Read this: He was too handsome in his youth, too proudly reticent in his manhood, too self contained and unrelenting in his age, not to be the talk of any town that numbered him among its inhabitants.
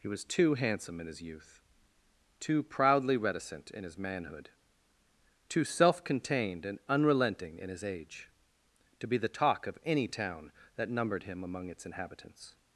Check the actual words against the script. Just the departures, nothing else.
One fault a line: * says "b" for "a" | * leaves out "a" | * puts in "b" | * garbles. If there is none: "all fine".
* leaves out "not"